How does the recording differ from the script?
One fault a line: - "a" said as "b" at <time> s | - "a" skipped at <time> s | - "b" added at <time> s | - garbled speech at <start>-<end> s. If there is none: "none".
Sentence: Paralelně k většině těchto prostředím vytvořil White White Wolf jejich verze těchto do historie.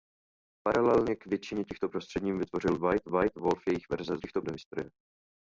none